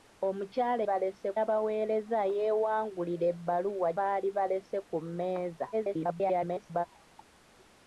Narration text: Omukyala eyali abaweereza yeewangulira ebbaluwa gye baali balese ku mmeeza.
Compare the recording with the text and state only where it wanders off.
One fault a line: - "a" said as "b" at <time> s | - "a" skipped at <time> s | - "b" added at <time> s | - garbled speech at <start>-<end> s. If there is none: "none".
- "eyali" said as "balese" at 0.9 s
- "gye" skipped at 3.9 s
- garbled speech at 5.7-6.9 s